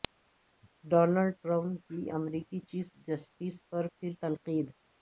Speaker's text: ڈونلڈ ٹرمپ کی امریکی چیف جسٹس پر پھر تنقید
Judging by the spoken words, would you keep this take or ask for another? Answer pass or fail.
pass